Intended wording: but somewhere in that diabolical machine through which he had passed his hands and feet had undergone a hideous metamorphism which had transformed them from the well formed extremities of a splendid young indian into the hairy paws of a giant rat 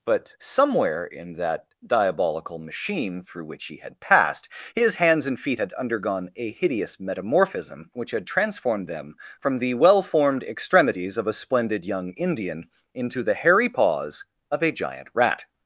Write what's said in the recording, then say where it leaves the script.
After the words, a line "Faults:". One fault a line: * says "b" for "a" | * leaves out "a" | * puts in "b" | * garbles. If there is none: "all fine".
but somewhere in that diabolical machine through which he had passed his hands and feet had undergone a hideous metamorphism which had transformed them from the well formed extremities of a splendid young indian into the hairy paws of a giant rat
Faults:
all fine